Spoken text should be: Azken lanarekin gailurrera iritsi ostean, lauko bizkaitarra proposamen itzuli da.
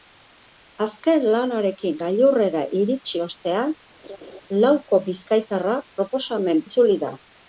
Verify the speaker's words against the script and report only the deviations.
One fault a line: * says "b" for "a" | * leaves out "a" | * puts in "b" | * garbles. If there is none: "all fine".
all fine